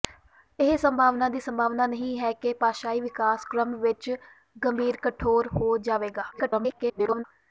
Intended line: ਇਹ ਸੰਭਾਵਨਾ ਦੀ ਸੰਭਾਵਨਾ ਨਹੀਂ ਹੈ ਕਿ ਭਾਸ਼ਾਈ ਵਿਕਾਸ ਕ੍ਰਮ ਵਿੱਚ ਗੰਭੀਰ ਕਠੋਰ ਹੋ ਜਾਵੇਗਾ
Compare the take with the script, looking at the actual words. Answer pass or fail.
fail